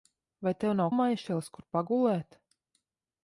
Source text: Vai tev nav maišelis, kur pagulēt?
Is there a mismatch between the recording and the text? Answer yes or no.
no